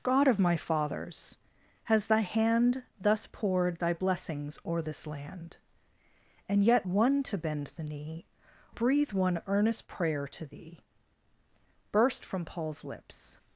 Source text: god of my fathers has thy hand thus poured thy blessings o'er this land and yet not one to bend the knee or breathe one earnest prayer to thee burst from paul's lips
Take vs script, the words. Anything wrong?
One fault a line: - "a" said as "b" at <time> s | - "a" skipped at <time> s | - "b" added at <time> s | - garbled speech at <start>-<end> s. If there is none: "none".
- "not" skipped at 6.9 s
- "or" skipped at 8.2 s